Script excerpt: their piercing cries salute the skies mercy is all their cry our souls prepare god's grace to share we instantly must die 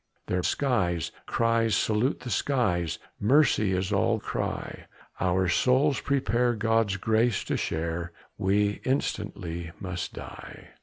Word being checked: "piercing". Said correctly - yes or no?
no